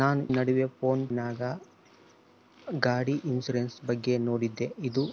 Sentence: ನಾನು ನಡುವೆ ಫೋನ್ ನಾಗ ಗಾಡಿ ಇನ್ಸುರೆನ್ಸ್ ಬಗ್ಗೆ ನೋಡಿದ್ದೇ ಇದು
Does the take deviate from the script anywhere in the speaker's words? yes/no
no